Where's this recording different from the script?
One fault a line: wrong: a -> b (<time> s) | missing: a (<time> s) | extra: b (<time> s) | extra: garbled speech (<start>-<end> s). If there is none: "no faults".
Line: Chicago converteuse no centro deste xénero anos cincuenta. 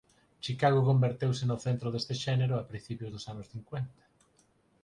extra: a principios dos (2.6 s)